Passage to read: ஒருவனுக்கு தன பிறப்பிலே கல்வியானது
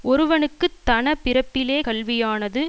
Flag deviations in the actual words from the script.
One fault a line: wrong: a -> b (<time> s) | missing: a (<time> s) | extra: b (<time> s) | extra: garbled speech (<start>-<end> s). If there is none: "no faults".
no faults